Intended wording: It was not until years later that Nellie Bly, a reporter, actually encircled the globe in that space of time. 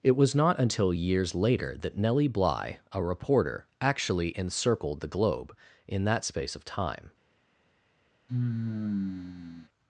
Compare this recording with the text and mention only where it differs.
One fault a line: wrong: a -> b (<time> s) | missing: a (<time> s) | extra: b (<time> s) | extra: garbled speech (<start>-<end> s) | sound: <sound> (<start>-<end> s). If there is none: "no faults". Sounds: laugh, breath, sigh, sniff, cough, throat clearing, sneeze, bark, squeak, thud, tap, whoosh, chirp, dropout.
sound: sigh (8.3-9.7 s)